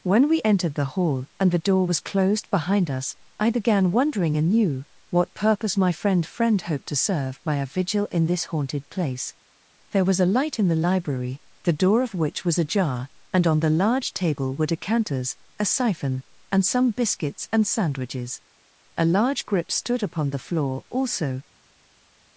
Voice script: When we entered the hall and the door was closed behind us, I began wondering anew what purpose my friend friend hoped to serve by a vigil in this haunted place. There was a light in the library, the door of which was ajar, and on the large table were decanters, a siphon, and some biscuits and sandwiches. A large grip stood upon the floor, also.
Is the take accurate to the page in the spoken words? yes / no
yes